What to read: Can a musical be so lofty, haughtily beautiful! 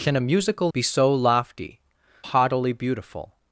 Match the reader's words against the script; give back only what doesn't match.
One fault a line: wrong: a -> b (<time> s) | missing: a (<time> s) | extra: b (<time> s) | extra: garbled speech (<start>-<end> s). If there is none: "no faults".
no faults